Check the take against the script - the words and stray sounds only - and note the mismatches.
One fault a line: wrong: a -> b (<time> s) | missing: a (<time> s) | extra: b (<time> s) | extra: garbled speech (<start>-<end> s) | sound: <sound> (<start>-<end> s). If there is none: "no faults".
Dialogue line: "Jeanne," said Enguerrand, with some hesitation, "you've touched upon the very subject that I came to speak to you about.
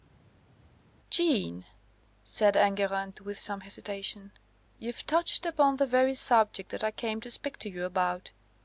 no faults